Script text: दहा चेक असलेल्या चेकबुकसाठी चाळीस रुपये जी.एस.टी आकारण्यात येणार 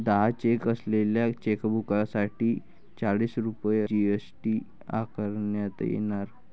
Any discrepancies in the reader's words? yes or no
no